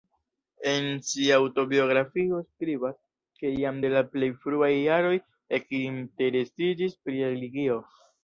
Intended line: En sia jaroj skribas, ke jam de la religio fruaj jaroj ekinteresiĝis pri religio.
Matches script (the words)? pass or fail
fail